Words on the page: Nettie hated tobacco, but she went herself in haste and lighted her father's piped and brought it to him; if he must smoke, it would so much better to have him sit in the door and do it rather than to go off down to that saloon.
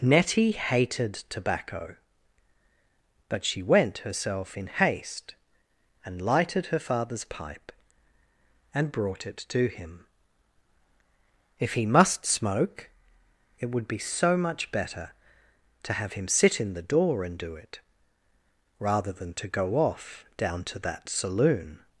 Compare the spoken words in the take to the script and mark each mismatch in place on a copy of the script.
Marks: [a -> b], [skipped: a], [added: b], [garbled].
Nettie hated tobacco, but she went herself in haste and lighted her father's [piped -> pipe] and brought it to him; if he must smoke, it would [added: be] so much better to have him sit in the door and do it rather than to go off down to that saloon.